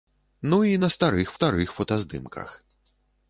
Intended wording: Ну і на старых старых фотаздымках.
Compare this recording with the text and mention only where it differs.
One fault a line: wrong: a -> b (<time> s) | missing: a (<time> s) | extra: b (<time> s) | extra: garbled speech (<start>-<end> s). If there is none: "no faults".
no faults